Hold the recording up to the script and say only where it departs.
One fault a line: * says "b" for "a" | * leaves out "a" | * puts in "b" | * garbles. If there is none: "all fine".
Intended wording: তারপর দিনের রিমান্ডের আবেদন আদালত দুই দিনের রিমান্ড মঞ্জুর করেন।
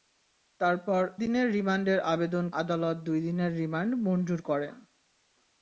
all fine